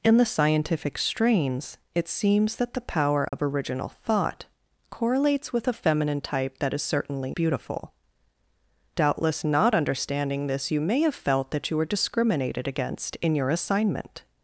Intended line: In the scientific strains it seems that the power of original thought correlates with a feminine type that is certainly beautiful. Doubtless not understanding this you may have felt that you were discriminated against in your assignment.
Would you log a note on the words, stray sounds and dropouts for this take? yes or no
yes